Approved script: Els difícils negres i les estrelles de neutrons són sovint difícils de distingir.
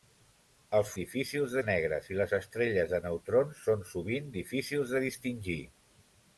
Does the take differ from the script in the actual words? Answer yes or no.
no